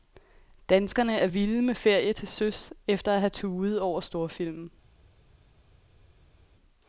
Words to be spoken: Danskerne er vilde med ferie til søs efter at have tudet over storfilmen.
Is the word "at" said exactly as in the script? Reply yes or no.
yes